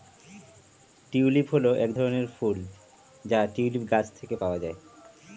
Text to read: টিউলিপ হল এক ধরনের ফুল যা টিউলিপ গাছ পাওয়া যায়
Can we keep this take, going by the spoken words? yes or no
no